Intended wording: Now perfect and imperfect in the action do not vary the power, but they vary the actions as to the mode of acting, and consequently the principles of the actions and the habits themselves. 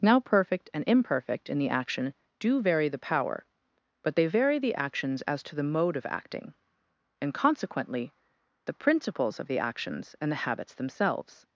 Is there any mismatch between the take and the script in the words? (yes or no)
yes